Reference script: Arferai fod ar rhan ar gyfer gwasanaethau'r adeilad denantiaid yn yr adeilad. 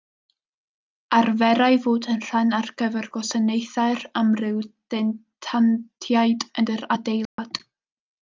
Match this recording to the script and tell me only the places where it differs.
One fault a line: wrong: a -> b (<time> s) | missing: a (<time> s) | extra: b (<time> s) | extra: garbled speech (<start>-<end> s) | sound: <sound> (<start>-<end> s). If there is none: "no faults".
wrong: ar -> yn (2.1 s)
wrong: adeilad -> amryw (4.2 s)
sound: dropout (7.3-7.4 s)